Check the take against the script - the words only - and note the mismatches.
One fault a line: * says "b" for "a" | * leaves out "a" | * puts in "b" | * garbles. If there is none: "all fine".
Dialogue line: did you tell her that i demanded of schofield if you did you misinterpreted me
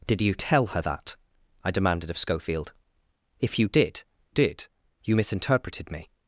* puts in "did"